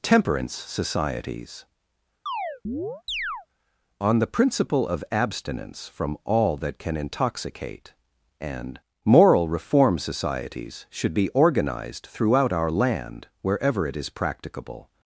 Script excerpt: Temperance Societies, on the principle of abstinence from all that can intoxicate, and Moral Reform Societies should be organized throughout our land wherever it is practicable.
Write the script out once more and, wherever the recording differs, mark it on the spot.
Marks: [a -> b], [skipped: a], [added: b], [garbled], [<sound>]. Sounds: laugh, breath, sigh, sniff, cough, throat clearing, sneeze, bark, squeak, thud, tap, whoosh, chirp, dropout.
Temperance Societies, [chirp] on the principle of abstinence from all that can intoxicate, and Moral Reform Societies should be organized throughout our land wherever it is practicable.